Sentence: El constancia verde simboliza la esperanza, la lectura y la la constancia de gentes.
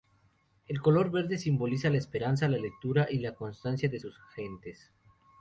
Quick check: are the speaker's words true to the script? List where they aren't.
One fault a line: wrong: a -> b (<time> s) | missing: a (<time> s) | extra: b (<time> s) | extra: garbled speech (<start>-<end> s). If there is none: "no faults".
wrong: constancia -> color (0.8 s)
missing: la (3.4 s)
extra: sus (4.0 s)